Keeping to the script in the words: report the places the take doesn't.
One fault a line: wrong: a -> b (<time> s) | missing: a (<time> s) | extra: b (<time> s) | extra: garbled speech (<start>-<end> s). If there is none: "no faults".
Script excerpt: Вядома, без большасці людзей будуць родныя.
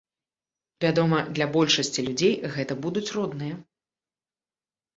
wrong: без -> для (1.4 s)
extra: гэта (2.6 s)